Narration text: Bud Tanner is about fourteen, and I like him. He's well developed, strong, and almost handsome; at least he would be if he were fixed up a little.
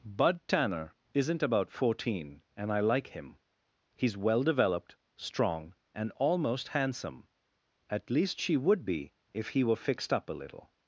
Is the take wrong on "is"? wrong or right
wrong